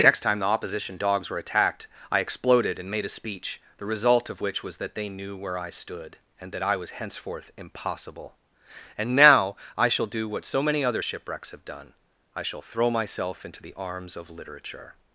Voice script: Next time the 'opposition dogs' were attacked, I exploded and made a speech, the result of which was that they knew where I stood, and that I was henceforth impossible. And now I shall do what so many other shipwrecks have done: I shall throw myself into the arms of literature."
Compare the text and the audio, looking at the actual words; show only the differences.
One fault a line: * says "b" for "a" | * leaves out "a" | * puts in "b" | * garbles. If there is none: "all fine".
all fine